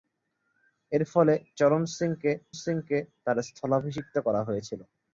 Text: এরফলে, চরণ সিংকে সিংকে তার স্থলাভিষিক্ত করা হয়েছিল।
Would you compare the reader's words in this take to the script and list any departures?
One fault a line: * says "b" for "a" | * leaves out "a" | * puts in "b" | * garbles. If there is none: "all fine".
all fine